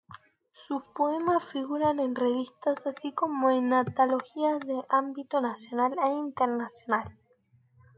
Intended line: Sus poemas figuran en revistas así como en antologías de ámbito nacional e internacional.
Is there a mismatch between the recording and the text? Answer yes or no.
no